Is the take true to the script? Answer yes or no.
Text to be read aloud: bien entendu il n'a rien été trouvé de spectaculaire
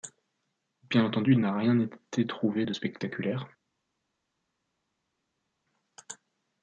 yes